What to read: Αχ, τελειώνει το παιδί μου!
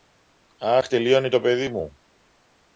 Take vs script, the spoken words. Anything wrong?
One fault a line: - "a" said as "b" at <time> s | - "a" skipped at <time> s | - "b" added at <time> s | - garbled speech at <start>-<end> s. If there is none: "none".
none